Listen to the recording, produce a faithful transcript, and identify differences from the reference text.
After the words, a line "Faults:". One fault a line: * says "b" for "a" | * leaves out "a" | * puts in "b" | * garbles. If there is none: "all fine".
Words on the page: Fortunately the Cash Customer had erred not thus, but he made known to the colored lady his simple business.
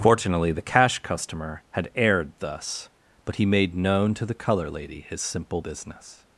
Fortunately the Cash Customer had erred thus, but he made known to the color lady his simple business.
Faults:
* leaves out "not"
* says "color" for "colored"